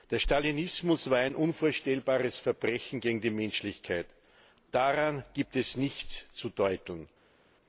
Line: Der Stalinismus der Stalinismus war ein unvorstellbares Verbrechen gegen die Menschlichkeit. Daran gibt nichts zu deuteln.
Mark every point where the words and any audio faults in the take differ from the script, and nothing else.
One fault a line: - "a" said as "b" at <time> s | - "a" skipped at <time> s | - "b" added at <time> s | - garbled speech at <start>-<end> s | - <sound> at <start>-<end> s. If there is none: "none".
- "der Stalinismus" skipped at 1.1 s
- "es" added at 5.5 s